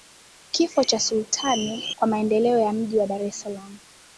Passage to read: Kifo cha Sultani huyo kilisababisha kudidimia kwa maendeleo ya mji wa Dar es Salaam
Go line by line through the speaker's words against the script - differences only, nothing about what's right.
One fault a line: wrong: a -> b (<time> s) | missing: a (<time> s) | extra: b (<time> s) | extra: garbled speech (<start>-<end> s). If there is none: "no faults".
missing: huyo kilisababisha kudidimia (1.8 s)